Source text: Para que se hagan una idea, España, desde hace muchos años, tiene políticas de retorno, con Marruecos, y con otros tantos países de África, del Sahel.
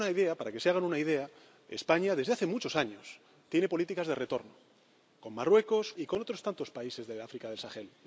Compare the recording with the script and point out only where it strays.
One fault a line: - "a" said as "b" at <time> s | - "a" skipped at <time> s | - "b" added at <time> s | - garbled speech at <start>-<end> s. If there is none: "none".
none